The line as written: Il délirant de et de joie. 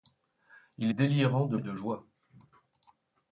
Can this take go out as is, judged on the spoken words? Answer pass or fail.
pass